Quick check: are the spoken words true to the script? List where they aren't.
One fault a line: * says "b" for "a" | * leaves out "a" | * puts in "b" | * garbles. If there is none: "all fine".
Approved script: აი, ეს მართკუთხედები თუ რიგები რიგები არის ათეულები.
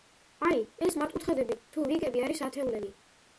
* leaves out "რიგები"